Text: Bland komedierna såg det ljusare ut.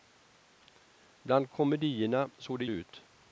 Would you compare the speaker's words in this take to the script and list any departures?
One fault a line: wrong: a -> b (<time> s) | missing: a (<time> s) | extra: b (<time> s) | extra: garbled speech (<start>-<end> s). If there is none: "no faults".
missing: ljusare (2.6 s)